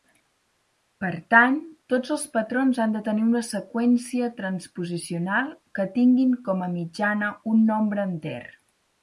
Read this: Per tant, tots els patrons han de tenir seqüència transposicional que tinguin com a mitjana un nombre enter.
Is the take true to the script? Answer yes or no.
no